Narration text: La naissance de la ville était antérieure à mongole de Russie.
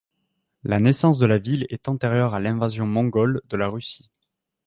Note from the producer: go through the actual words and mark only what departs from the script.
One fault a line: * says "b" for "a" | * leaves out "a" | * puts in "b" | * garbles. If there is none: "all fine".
* says "est" for "était"
* puts in "l'invasion"
* puts in "la"